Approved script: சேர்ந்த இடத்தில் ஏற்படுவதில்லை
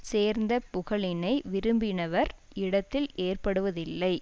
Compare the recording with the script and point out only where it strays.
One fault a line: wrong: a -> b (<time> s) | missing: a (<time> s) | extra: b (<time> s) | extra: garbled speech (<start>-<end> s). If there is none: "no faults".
extra: புகழினை விரும்பினவர் (0.7 s)